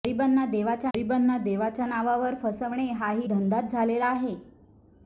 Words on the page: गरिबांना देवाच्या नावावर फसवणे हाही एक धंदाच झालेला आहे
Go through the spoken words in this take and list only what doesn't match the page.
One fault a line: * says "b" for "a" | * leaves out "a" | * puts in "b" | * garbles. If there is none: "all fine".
* puts in "गरिबांना देवाच्या"
* leaves out "एक"